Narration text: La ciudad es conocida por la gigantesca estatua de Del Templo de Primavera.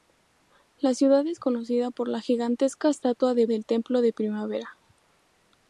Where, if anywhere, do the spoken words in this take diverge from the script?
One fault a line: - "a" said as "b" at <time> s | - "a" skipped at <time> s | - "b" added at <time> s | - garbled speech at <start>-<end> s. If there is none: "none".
none